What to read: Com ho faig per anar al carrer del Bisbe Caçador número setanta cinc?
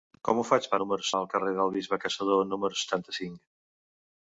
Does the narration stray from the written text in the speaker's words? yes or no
yes